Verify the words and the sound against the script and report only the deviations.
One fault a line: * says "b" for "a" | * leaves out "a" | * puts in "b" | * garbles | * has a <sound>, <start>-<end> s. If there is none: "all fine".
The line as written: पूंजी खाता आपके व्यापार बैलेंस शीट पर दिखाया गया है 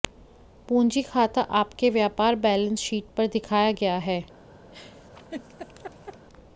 * has a laugh, 4.7-6.3 s